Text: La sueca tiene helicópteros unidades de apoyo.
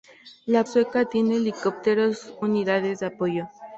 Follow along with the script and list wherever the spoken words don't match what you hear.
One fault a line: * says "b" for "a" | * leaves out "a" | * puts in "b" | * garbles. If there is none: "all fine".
all fine